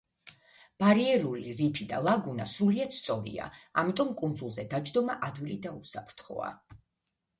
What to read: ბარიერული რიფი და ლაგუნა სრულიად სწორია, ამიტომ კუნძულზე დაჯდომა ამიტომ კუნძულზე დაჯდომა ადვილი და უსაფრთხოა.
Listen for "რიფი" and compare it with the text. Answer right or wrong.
right